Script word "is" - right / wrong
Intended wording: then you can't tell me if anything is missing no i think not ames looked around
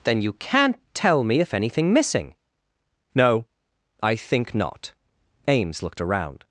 wrong